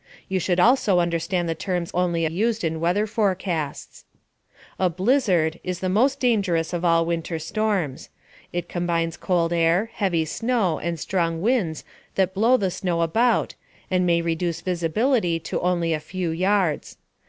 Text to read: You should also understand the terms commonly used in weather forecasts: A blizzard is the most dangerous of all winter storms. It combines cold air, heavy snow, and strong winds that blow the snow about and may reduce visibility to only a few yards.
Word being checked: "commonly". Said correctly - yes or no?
no